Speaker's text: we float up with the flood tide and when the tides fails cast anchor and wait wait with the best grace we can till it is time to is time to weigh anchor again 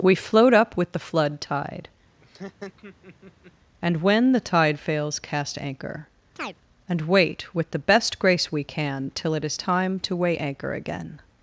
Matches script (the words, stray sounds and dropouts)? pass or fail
fail